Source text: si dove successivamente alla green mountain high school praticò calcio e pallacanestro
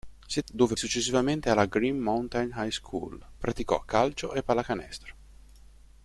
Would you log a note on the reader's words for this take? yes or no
no